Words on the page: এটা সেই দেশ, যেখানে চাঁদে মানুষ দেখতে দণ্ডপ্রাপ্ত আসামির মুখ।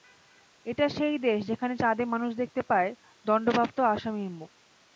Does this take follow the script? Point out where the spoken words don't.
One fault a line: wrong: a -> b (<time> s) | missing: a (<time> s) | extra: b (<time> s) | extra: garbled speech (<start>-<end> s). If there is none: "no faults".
extra: পায় (2.7 s)